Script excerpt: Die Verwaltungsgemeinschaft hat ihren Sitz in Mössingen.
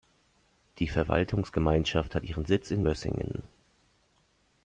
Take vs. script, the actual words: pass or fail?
pass